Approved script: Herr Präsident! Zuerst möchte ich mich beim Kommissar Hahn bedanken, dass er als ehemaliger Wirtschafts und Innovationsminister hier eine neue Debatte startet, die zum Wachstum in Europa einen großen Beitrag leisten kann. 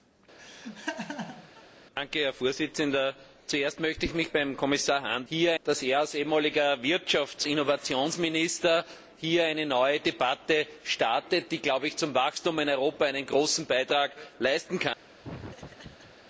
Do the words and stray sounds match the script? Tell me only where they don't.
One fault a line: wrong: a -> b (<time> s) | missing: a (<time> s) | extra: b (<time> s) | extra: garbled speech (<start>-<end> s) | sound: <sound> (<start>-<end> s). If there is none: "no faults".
sound: laugh (0.4-1.6 s)
wrong: bedanken -> hier (5.3 s)
missing: und (7.5 s)
sound: laugh (15.2-16.2 s)